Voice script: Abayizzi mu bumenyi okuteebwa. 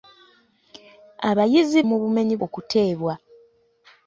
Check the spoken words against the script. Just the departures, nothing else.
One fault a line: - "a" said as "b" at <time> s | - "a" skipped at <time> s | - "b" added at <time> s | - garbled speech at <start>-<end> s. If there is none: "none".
none